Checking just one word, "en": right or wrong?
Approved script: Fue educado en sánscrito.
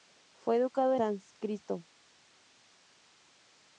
wrong